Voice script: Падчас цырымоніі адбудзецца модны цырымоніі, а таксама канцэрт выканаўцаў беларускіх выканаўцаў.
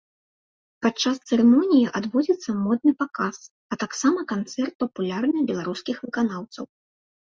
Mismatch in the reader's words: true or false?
true